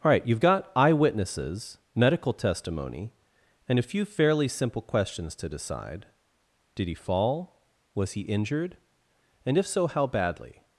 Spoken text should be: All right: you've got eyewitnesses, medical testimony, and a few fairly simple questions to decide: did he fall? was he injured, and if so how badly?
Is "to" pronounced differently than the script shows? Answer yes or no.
no